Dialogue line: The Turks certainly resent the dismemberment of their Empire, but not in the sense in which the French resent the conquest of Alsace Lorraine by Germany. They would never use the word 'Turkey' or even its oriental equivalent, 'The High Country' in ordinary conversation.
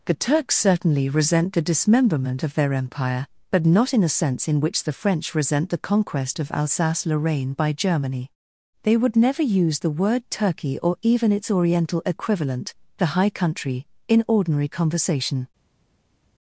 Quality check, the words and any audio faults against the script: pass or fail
fail